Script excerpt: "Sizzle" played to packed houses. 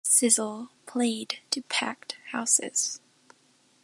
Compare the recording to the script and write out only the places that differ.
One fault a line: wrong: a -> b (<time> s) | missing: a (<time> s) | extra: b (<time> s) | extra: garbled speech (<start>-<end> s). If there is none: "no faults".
no faults